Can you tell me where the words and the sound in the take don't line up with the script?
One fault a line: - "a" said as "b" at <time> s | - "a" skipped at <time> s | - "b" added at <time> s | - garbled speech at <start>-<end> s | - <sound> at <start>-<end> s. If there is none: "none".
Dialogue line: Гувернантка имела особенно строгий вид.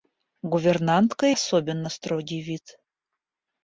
- "имела" skipped at 1.4 s